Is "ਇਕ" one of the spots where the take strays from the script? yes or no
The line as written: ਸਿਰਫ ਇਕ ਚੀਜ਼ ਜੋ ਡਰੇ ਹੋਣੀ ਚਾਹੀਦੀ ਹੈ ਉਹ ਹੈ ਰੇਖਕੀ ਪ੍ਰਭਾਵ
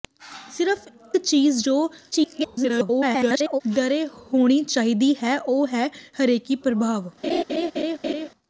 yes